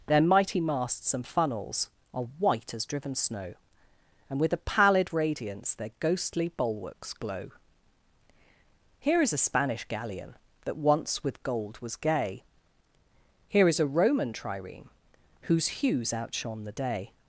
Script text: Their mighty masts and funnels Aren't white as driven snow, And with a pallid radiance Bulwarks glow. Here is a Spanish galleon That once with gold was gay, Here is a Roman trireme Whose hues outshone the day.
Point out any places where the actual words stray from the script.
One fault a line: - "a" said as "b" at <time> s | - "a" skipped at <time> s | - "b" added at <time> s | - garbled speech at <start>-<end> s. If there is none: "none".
- "Aren't" said as "Are" at 2.1 s
- "Their ghostly" added at 5.7 s